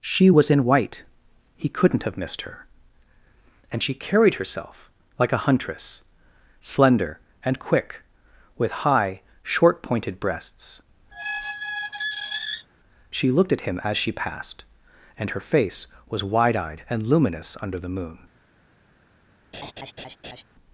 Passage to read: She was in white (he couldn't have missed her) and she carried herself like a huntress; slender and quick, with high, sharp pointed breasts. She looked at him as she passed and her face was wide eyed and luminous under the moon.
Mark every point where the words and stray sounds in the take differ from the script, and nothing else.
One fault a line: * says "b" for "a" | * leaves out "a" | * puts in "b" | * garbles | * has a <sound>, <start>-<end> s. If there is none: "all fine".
* says "short" for "sharp"
* has a squeak, 11.1-12.7 s
* has a laugh, 19.5-20.4 s